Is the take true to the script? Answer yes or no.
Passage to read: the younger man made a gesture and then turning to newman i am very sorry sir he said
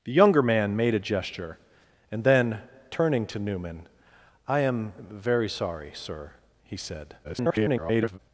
no